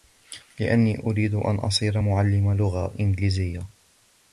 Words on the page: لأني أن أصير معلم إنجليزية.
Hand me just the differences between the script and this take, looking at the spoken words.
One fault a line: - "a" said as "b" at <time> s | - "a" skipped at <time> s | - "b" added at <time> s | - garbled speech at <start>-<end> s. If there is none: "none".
- "أريد" added at 1.0 s
- "لغة" added at 2.5 s